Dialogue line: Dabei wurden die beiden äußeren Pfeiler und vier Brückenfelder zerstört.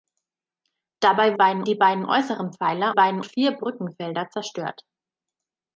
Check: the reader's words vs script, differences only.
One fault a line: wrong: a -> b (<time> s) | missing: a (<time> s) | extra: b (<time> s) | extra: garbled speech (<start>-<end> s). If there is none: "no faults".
wrong: wurden -> beiden (1.3 s)
wrong: und -> beiden (2.9 s)